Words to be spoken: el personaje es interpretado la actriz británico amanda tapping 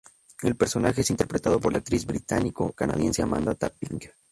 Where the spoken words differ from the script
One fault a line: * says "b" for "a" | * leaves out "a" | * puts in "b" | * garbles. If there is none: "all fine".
* puts in "por"
* puts in "canadiense"